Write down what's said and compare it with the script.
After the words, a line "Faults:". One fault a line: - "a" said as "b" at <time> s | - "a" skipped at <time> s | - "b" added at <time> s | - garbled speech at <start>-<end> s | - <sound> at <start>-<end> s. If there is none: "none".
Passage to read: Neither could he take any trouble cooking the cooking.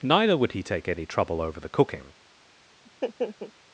Neither would he take any trouble over the cooking.
Faults:
- "could" said as "would" at 0.4 s
- "cooking" said as "over" at 1.4 s
- laugh at 2.8-3.5 s